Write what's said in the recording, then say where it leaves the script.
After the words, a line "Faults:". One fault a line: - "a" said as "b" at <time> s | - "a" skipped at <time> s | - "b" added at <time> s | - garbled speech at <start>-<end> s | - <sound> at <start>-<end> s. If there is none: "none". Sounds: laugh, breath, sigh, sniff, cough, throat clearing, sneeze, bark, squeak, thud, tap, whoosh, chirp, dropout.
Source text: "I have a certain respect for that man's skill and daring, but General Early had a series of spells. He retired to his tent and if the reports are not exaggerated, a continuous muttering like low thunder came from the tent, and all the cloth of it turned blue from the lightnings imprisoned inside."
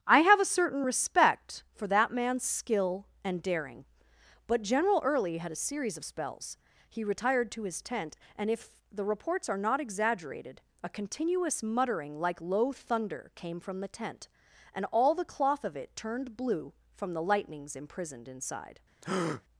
"I have a certain respect for that man's skill and daring, but General Early had a series of spells. He retired to his tent and if the reports are not exaggerated, a continuous muttering like low thunder came from the tent, and all the cloth of it turned blue from the lightnings imprisoned inside."
Faults:
- breath at 19.0-19.4 s